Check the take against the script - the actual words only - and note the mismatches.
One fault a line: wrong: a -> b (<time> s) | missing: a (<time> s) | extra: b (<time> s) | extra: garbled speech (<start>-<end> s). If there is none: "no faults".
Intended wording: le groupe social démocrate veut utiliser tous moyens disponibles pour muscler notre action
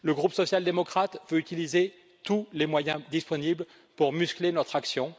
extra: les (2.5 s)